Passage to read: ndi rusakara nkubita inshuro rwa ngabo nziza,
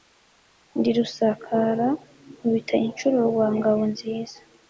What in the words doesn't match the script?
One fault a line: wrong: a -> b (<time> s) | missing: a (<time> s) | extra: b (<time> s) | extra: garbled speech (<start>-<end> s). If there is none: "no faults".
no faults